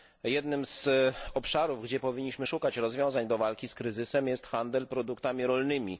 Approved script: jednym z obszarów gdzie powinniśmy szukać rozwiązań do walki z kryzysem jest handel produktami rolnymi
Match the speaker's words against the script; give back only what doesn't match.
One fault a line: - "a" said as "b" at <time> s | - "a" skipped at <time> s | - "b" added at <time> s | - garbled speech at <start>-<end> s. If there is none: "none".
none